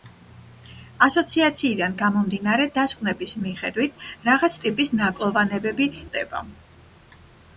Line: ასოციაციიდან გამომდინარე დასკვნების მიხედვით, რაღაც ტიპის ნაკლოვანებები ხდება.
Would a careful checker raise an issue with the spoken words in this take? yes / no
no